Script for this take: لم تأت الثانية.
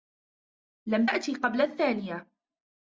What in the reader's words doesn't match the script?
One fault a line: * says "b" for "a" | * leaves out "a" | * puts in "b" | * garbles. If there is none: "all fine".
* puts in "قبل"